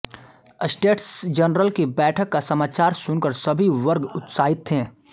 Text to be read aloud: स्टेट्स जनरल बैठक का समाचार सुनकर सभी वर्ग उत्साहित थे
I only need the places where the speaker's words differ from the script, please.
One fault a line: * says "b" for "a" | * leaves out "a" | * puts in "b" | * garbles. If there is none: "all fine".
* puts in "की"